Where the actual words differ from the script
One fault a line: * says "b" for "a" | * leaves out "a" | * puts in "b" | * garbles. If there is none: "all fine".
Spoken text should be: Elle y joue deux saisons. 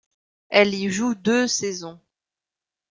all fine